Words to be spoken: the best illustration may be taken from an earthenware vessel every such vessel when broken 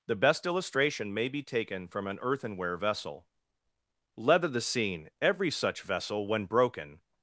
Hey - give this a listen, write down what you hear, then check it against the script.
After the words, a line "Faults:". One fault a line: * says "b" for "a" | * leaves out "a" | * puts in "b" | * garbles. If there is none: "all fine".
the best illustration may be taken from an earthenware vessel leather the scene every such vessel when broken
Faults:
* puts in "leather the scene"